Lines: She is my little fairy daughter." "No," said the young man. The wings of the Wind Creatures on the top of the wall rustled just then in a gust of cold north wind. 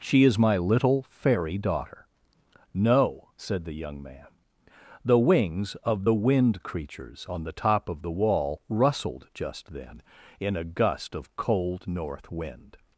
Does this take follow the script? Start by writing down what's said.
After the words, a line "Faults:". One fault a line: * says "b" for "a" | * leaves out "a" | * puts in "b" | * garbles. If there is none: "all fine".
She is my little fairy daughter." "No," said the young man. The wings of the Wind Creatures on the top of the wall rustled just then in a gust of cold north wind.
Faults:
all fine